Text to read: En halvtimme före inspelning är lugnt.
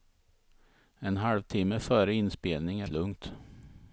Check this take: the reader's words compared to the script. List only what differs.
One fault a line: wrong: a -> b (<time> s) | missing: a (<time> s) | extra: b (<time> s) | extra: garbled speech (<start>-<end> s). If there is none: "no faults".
no faults